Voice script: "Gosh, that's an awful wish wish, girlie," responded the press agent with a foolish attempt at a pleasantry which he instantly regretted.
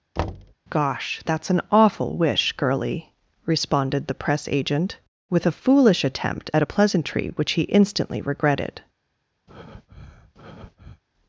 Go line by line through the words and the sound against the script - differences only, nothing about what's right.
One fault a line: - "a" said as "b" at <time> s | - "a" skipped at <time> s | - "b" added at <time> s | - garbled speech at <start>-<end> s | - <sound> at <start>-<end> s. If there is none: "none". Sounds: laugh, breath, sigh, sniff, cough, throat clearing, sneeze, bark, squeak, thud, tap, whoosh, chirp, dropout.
- thud at 0.2-0.5 s
- "wish" skipped at 2.5 s
- breath at 9.5-11.0 s